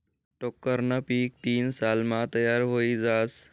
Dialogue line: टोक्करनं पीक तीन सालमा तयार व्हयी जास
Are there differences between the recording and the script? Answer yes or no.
no